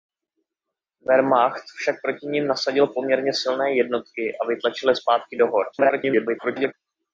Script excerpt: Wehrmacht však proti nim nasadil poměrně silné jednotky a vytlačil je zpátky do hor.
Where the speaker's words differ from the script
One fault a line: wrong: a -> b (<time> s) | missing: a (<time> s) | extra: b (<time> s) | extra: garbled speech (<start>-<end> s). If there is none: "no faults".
extra: garbled speech (5.7-6.7 s)